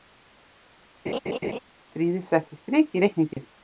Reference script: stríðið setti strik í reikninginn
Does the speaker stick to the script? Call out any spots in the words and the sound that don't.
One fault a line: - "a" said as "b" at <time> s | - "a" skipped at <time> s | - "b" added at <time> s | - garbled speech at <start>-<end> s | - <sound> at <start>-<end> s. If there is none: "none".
- laugh at 1.1-1.6 s
- dropout at 3.3-3.4 s